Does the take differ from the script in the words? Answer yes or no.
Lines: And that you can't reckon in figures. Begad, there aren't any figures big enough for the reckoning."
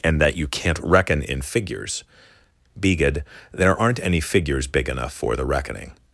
no